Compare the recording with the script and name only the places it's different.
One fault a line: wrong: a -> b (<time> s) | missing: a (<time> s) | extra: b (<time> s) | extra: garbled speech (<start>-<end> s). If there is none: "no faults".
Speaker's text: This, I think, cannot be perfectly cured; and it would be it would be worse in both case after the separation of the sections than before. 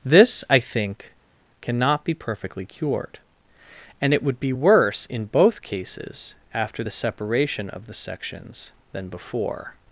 missing: it would be (4.5 s)
wrong: case -> cases (5.6 s)